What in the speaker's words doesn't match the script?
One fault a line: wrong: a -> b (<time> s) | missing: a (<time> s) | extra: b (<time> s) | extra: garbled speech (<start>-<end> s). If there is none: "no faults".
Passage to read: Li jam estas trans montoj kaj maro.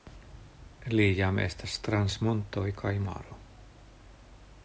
no faults